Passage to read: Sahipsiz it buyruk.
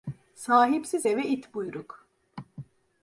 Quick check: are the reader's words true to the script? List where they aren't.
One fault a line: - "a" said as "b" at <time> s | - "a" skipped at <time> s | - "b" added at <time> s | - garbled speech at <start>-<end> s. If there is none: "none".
- "eve" added at 1.1 s